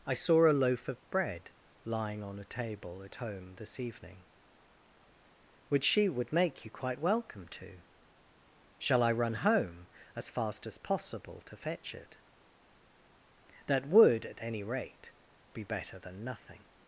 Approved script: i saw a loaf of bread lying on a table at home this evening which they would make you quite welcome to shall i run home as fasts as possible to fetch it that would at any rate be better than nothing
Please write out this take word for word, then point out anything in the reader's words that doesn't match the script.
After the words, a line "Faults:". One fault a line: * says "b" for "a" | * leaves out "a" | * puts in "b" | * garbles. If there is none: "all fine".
i saw a loaf of bread lying on a table at home this evening which she would make you quite welcome to shall i run home as fast as possible to fetch it that would at any rate be better than nothing
Faults:
* says "she" for "they"
* says "fast" for "fasts"